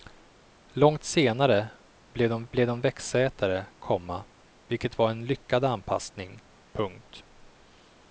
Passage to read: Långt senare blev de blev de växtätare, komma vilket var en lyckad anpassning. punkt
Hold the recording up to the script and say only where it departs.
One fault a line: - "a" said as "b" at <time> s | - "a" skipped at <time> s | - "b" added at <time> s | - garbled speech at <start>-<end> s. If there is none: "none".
none